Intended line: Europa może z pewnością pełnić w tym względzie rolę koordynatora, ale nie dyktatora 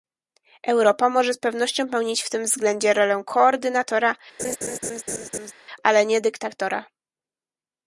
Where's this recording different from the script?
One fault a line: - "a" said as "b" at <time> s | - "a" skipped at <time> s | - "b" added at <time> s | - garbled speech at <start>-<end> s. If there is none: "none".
none